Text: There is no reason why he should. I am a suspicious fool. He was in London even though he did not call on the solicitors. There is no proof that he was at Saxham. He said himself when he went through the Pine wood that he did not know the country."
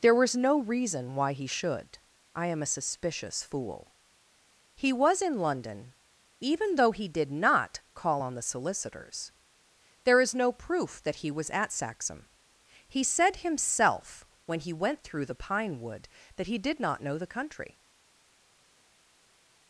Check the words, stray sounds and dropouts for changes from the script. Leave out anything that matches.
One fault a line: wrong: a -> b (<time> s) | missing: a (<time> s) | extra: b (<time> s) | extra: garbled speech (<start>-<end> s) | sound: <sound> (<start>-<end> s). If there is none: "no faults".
wrong: is -> was (0.1 s)